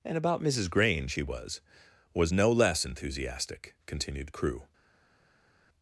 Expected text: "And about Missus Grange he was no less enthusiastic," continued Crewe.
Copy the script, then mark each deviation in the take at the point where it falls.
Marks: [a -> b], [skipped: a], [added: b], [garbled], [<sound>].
"And about Missus Grange he was [added: was] no less enthusiastic," continued Crewe.